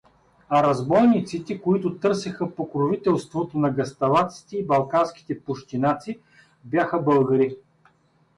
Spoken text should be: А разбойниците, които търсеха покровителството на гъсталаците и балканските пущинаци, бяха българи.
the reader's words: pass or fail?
pass